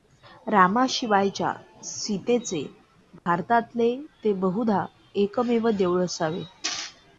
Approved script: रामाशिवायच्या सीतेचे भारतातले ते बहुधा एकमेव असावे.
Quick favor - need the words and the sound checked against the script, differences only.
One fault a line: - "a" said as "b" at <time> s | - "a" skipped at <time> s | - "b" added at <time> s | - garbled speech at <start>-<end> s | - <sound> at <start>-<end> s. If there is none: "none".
- dropout at 3.2-3.3 s
- "देऊळ" added at 5.7 s